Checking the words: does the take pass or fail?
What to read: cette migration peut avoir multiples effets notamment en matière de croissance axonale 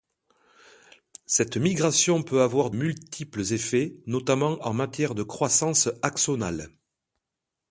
pass